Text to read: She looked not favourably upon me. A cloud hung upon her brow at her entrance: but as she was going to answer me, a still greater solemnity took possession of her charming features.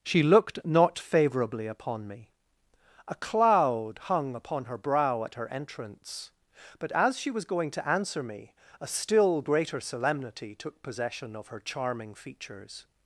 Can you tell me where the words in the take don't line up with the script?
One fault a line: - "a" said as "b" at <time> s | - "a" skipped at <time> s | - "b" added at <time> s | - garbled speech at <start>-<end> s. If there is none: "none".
none